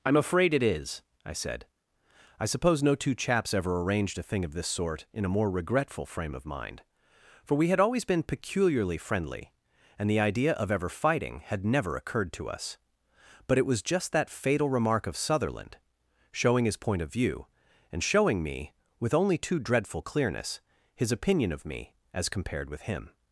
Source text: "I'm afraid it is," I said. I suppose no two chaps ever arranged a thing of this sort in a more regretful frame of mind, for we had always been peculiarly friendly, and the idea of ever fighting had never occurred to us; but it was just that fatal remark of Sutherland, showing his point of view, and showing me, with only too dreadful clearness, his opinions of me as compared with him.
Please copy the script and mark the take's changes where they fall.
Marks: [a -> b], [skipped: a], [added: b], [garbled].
"I'm afraid it is," I said. I suppose no two chaps ever arranged a thing of this sort in a more regretful frame of mind, for we had always been peculiarly friendly, and the idea of ever fighting had never occurred to us; but it was just that fatal remark of Sutherland, showing his point of view, and showing me, with only too dreadful clearness, his [opinions -> opinion] of me as compared with him.